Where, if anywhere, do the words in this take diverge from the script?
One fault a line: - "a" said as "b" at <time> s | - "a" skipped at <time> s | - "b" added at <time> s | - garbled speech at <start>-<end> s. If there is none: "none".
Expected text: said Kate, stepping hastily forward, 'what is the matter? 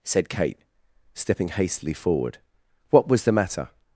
- "is" said as "was" at 3.1 s